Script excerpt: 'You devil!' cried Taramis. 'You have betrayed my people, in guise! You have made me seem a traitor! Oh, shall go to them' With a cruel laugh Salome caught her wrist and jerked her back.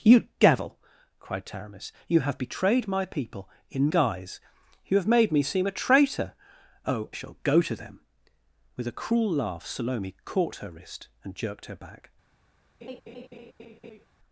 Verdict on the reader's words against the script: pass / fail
pass